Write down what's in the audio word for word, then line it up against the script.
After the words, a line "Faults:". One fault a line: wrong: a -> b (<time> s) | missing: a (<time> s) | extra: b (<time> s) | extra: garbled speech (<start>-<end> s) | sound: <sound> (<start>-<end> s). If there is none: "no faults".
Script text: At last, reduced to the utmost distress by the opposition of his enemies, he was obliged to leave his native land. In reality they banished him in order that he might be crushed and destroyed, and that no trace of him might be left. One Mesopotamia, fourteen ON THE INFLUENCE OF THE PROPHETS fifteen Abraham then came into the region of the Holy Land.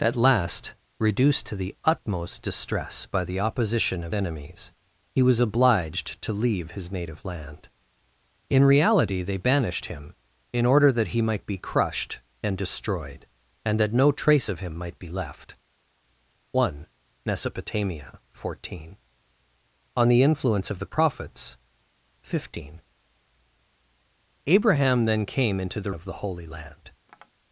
At last, reduced to the utmost distress by the opposition of enemies, he was obliged to leave his native land. In reality they banished him in order that he might be crushed and destroyed, and that no trace of him might be left. One Mesopotamia, fourteen ON THE INFLUENCE OF THE PROPHETS fifteen Abraham then came into the of the Holy Land.
Faults:
missing: his (4.2 s)
missing: region (25.9 s)
sound: tap (27.1-27.3 s)